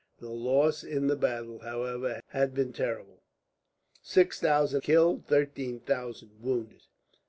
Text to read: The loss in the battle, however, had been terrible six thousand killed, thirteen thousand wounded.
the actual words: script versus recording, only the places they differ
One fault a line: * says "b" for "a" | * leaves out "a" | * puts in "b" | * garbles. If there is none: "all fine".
all fine